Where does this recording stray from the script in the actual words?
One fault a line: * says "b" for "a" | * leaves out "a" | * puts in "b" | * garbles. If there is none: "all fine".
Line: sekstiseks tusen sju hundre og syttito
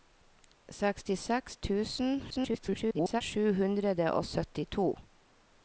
* garbles